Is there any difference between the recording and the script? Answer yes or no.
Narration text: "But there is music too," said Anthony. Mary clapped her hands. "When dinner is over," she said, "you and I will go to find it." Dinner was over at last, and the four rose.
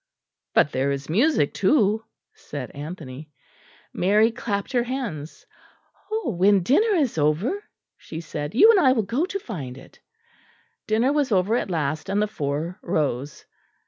no